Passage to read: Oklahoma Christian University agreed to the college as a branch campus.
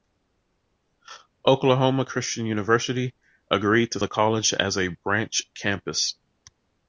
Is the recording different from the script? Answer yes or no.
no